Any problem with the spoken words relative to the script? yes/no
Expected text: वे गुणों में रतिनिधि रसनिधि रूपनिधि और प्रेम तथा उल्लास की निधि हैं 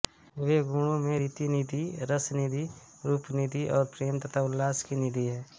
no